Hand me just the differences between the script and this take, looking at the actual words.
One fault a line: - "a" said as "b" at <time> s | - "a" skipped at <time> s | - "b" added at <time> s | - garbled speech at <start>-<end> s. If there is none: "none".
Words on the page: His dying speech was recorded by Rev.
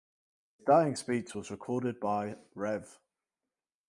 none